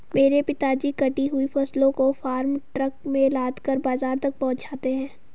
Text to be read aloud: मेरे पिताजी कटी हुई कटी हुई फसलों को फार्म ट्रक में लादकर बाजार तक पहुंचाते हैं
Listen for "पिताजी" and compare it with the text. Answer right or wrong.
right